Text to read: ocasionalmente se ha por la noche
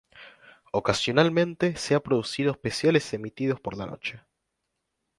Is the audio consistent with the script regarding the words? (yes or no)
no